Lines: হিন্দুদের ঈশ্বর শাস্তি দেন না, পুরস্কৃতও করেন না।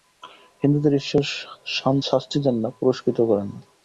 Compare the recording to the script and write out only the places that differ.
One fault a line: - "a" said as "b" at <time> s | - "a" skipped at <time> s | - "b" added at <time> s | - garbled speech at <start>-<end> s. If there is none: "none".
none